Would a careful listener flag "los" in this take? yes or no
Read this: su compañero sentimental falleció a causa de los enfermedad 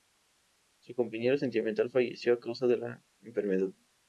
yes